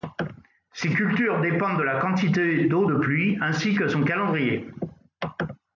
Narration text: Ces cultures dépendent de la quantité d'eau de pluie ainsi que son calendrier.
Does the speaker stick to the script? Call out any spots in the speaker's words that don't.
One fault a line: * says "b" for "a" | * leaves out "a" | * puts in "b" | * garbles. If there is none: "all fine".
all fine